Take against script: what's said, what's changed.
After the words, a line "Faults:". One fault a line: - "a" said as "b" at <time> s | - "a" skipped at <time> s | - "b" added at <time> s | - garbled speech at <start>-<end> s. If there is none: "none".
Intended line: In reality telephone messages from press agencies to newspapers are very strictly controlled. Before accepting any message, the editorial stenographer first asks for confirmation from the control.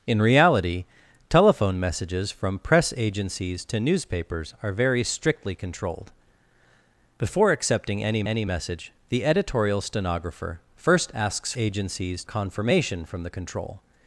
In reality telephone messages from press agencies to newspapers are very strictly controlled. Before accepting any any message, the editorial stenographer first asks agencies confirmation from the control.
Faults:
- "any" added at 8.3 s
- "for" said as "agencies" at 11.6 s